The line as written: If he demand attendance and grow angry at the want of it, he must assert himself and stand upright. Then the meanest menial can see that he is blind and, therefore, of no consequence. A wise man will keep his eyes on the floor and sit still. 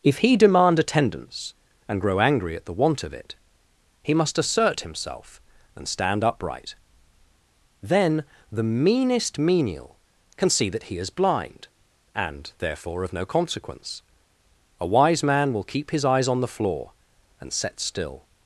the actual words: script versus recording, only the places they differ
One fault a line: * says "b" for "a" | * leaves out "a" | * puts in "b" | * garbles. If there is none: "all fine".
* says "set" for "sit"